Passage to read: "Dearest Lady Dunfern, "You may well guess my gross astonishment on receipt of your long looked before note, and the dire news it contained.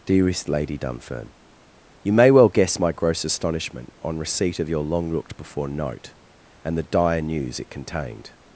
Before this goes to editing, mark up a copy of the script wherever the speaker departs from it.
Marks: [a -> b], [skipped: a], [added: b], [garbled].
"Dearest Lady Dunfern, "You may well guess my gross astonishment on receipt of your long looked before note, and the dire news it contained.